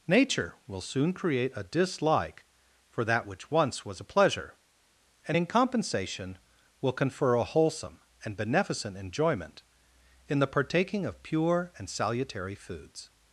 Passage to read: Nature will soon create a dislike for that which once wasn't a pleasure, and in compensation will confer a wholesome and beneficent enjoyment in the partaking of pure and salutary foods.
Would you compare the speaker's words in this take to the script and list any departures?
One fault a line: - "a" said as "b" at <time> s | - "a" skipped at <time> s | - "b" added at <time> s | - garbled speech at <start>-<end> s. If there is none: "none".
- "wasn't" said as "was" at 3.9 s